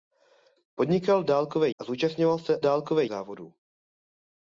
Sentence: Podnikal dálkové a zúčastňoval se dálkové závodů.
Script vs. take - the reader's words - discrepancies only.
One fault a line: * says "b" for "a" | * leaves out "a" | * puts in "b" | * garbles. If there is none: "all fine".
all fine